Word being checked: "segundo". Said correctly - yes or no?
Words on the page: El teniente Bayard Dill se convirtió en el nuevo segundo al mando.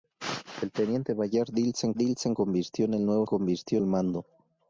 no